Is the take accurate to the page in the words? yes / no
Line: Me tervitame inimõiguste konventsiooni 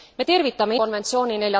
no